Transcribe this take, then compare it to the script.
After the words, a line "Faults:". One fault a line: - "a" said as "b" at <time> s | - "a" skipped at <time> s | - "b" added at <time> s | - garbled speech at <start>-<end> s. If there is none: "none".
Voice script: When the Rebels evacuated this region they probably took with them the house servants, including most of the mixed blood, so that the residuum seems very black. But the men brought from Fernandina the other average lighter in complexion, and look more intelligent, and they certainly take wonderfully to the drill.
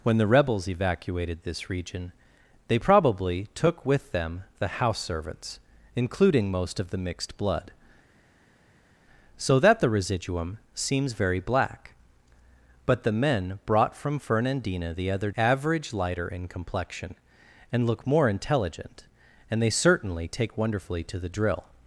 When the Rebels evacuated this region they probably took with them the house servants, including most of the mixed blood, so that the residuum seems very black. But the men brought from Fernandina the other average lighter in complexion, and look more intelligent, and they certainly take wonderfully to the drill.
Faults:
none